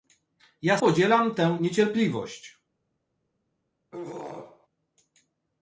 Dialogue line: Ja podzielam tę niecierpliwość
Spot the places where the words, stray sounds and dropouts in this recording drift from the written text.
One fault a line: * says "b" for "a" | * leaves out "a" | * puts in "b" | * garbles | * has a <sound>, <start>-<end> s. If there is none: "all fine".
* has a throat clearing, 3.9-4.7 s